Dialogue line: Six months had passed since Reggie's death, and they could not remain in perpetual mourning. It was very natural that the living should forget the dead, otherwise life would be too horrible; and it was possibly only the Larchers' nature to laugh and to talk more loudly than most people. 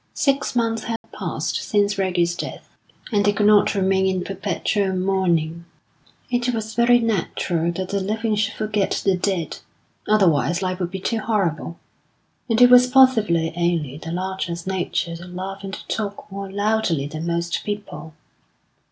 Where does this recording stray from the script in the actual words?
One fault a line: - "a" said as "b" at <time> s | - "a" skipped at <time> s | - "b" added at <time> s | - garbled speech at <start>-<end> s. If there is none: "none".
none